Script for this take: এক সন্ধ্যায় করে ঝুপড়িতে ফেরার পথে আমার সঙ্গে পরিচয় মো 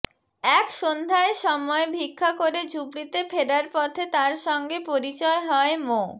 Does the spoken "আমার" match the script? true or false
false